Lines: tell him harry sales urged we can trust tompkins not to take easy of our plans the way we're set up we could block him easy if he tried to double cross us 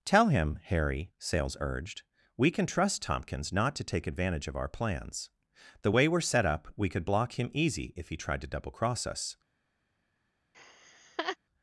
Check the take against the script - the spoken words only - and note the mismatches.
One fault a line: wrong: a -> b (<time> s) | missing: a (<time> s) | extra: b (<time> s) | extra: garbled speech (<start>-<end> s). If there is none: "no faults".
wrong: easy -> advantage (4.1 s)